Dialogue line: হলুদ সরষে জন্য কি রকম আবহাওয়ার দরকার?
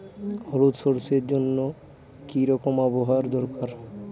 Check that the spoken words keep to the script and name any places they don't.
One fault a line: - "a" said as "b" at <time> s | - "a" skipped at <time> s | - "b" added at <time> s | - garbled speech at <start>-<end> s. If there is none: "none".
none